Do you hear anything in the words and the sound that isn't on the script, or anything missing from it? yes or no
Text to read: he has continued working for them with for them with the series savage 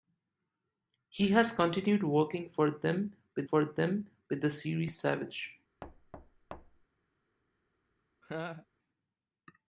yes